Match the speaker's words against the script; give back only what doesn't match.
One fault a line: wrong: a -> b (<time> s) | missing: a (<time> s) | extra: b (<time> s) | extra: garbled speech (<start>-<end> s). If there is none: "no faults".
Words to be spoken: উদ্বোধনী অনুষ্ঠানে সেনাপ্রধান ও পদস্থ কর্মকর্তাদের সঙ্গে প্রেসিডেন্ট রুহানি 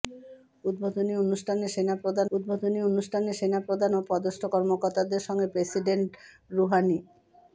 extra: উদ্বোধনী অনুষ্ঠানে সেনাপ্রধান (2.3 s)